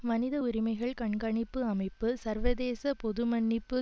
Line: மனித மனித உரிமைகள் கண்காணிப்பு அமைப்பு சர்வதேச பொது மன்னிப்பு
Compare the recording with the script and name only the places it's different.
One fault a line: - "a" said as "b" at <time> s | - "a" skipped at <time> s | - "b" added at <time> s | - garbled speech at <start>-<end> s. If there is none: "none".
- "மனித" skipped at 0.3 s